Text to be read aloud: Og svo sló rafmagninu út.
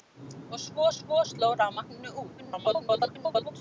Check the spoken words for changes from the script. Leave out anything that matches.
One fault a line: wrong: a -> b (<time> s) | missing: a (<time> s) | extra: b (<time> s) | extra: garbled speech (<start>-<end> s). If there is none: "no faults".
extra: svo (1.0 s)
extra: garbled speech (2.4-3.5 s)